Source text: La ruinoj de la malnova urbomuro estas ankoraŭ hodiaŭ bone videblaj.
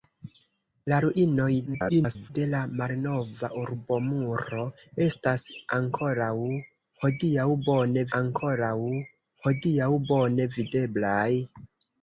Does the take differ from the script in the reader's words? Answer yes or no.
yes